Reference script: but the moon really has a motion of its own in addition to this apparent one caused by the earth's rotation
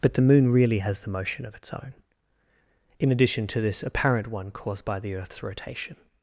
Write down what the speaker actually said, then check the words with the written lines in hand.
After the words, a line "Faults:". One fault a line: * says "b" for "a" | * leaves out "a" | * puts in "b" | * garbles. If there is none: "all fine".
but the moon really has the motion of its own in addition to this apparent one caused by the earth's rotation
Faults:
* says "the" for "a"